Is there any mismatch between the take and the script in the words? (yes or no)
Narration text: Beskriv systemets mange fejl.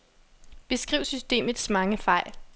no